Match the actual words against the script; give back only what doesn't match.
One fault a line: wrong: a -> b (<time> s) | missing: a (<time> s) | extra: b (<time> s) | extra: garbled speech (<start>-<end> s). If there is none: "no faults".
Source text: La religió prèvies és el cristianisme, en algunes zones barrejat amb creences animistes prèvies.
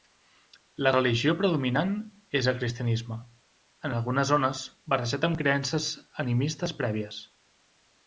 wrong: prèvies -> predominant (1.4 s)